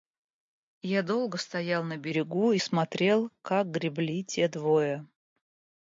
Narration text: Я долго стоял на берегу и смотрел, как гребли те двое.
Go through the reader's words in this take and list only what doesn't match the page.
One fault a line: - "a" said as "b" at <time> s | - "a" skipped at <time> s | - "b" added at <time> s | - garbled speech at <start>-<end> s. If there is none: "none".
none